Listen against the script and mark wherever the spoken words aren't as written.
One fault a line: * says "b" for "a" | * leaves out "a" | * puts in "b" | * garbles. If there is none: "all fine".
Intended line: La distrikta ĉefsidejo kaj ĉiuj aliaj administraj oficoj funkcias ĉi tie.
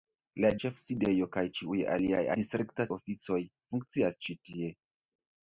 * leaves out "distrikta"
* says "distrikta" for "administraj"